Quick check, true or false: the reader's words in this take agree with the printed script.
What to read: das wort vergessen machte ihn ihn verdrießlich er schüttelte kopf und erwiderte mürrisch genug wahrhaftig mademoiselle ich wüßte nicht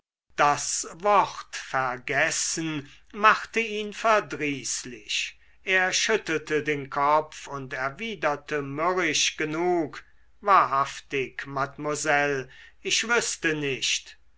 false